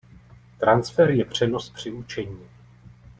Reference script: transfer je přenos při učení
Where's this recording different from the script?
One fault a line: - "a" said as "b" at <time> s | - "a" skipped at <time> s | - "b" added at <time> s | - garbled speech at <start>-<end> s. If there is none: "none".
none